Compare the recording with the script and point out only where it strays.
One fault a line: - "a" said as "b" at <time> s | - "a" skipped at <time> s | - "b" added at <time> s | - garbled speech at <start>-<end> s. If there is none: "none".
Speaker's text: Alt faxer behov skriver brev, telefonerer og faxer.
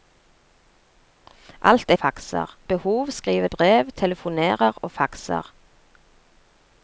none